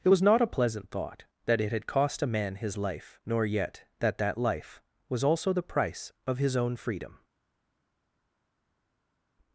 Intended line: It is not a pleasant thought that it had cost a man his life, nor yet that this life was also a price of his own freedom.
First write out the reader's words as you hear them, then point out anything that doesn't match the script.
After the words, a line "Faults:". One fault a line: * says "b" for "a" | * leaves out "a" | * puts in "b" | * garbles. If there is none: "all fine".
It was not a pleasant thought that it had cost a man his life, nor yet that that life was also the price of his own freedom.
Faults:
* says "was" for "is"
* says "that" for "this"
* says "the" for "a"